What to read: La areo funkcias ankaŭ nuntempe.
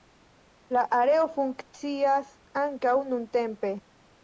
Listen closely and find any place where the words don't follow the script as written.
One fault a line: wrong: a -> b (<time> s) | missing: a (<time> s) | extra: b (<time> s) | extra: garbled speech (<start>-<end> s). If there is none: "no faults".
no faults